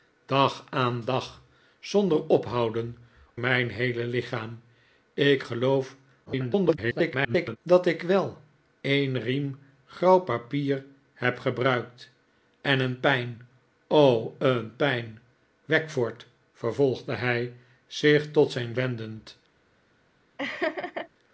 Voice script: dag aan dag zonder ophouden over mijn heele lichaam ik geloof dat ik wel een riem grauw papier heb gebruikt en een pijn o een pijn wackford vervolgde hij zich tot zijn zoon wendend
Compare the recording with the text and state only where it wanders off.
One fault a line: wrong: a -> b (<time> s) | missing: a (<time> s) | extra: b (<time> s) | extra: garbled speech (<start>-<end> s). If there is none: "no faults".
missing: over (3.0 s)
extra: garbled speech (6.3-7.6 s)
missing: zoon (18.8 s)